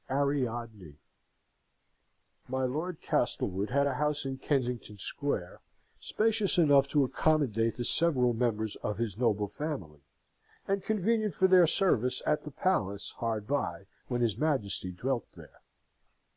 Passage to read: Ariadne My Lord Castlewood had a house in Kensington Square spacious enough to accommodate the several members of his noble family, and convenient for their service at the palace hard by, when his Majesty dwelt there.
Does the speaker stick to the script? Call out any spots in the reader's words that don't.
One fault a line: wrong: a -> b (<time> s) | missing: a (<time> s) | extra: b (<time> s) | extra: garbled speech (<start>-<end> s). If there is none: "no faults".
no faults